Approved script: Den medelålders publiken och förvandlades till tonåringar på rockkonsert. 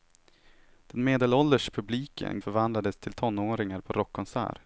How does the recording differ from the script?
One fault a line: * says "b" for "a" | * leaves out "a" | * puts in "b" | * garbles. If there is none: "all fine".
all fine